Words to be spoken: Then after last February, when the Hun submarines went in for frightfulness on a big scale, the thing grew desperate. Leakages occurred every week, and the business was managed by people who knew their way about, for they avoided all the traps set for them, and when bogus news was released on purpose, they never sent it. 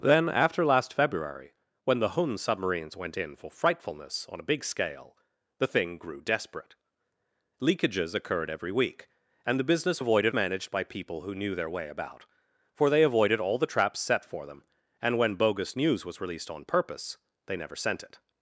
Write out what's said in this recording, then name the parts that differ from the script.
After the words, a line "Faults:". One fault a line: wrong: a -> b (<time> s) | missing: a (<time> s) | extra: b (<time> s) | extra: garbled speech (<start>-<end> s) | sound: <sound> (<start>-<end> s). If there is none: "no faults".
Then after last February, when the Hun submarines went in for frightfulness on a big scale, the thing grew desperate. Leakages occurred every week, and the business avoided managed by people who knew their way about, for they avoided all the traps set for them, and when bogus news was released on purpose, they never sent it.
Faults:
wrong: was -> avoided (10.0 s)